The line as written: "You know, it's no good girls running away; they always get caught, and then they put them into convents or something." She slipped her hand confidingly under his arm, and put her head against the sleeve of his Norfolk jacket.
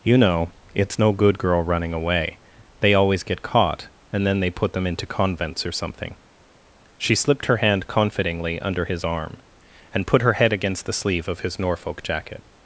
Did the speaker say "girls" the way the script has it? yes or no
no